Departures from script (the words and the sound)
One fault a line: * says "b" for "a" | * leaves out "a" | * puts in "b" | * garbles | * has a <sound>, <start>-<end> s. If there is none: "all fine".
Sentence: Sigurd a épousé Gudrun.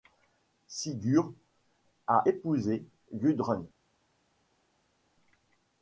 all fine